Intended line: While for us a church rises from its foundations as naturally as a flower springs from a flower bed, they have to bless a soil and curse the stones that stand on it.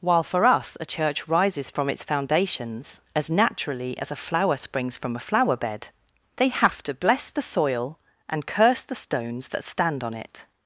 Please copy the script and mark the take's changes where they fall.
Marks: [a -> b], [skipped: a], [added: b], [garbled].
While for us a church rises from its foundations as naturally as a flower springs from a flower bed, they have to bless [a -> the] soil and curse the stones that stand on it.